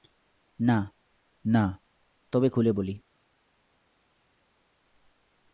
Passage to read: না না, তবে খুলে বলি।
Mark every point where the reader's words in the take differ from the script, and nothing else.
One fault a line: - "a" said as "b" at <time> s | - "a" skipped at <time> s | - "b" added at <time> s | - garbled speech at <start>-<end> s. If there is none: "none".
none